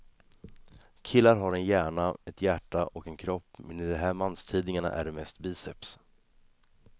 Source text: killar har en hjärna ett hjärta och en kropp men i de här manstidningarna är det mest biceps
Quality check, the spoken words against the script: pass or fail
pass